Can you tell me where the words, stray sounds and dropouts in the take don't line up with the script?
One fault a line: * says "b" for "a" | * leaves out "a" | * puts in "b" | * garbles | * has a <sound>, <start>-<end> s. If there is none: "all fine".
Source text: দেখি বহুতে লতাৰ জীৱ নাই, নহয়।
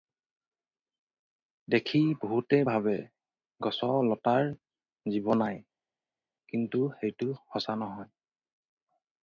* puts in "ভাবে গছ"
* puts in "কিন্তু সেইটো সঁচা"